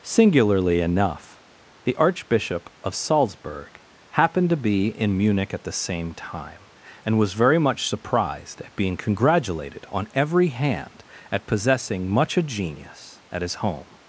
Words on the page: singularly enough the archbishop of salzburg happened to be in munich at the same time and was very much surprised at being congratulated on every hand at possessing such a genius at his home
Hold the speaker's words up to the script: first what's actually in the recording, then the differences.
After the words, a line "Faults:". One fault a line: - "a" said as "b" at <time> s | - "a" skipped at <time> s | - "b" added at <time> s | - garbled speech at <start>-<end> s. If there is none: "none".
singularly enough the archbishop of salzburg happened to be in munich at the same time and was very much surprised at being congratulated on every hand at possessing much a genius at his home
Faults:
- "such" said as "much" at 12.1 s